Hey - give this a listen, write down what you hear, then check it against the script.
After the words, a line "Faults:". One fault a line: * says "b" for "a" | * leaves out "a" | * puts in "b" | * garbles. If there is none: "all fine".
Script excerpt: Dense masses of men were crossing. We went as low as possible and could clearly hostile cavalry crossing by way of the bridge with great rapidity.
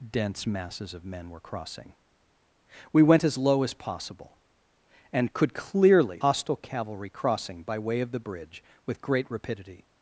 Dense masses of men were crossing. We went as low as possible and could clearly hostile cavalry crossing by way of the bridge with great rapidity.
Faults:
all fine